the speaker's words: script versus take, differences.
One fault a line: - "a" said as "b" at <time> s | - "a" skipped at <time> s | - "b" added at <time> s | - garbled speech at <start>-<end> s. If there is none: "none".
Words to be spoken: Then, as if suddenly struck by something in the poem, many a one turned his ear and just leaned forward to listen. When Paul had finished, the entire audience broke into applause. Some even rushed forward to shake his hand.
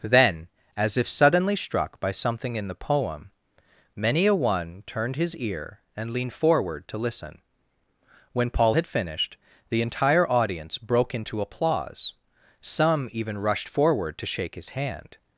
- "just" skipped at 6.1 s